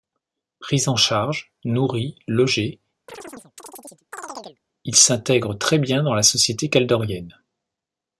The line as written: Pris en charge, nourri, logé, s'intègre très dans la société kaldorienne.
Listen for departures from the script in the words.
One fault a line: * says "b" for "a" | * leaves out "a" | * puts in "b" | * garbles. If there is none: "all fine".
* puts in "il"
* puts in "bien"